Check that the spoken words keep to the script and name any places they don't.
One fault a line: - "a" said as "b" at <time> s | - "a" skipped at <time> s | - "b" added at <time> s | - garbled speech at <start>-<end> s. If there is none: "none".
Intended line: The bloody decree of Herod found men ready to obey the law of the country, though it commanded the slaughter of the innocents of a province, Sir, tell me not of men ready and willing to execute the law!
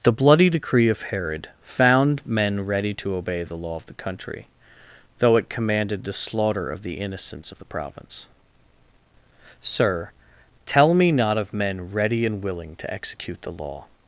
- "a" said as "the" at 7.6 s